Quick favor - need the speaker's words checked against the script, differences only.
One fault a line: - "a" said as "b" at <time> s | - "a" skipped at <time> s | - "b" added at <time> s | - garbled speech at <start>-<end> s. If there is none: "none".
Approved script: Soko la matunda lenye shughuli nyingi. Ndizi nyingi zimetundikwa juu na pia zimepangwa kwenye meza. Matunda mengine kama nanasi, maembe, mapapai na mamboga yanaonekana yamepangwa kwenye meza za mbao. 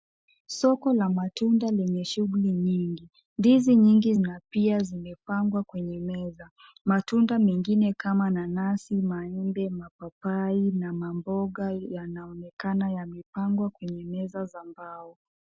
- "zimetundikwa juu" skipped at 4.1 s